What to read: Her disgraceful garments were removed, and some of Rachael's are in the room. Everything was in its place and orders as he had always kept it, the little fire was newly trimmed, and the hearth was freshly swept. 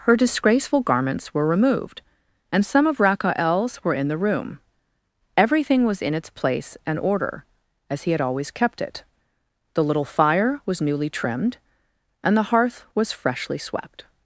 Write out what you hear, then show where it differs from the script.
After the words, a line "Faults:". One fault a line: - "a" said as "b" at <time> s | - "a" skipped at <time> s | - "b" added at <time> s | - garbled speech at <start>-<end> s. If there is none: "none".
Her disgraceful garments were removed, and some of Rachael's were in the room. Everything was in its place and order as he had always kept it, the little fire was newly trimmed, and the hearth was freshly swept.
Faults:
- "are" said as "were" at 3.8 s
- "orders" said as "order" at 7.0 s